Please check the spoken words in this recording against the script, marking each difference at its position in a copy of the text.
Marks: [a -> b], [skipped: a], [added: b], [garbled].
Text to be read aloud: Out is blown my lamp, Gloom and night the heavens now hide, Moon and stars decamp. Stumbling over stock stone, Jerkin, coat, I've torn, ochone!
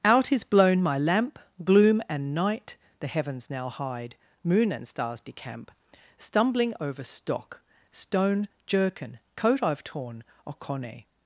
Out is blown my lamp, Gloom and night the heavens now hide, Moon and stars decamp. Stumbling over stock stone, Jerkin, coat, I've torn, ochone!